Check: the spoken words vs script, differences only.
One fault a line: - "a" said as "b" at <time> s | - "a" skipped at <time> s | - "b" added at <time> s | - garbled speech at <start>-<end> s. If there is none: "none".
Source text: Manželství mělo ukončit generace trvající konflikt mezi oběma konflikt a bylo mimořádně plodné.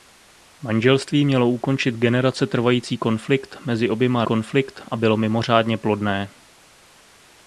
none